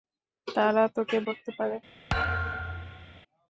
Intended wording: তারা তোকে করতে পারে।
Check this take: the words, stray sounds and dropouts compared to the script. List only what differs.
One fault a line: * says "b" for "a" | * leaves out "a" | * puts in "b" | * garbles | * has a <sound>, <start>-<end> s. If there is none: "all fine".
* has a thud, 2.1-3.2 s